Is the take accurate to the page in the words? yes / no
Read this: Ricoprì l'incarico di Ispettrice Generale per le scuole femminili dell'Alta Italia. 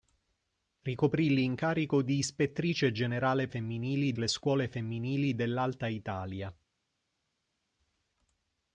no